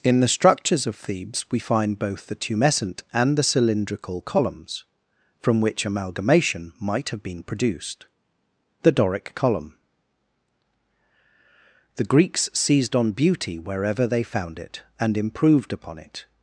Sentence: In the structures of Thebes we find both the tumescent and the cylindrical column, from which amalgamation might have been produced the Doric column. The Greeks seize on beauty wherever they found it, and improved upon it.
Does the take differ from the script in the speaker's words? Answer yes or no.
yes